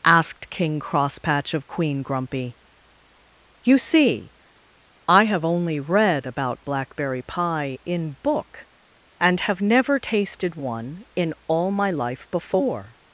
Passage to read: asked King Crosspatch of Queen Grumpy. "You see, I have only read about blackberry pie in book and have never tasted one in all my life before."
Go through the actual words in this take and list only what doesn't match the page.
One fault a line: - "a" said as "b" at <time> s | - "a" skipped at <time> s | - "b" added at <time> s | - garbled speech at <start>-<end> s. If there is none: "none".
none